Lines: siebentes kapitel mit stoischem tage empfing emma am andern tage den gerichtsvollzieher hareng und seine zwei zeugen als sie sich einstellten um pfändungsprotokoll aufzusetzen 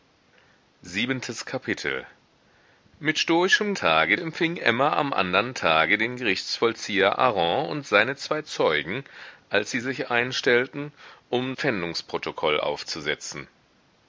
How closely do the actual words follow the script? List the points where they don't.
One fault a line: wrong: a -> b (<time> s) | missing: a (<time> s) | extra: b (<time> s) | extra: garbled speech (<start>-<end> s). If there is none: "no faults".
no faults